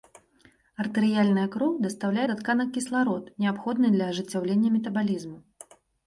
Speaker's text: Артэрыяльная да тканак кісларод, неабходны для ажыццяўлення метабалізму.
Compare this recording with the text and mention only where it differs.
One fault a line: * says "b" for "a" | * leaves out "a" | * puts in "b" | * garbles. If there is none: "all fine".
* puts in "кроў дастаўляе"